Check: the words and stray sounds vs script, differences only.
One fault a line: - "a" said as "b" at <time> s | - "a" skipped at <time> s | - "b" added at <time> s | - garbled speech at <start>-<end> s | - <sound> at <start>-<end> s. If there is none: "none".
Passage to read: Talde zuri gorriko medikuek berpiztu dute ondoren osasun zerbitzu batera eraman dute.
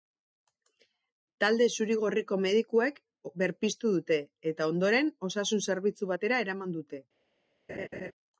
- "eta" added at 4.5 s
- laugh at 7.7-8.1 s